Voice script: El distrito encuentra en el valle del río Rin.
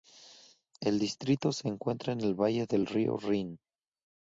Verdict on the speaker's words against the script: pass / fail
fail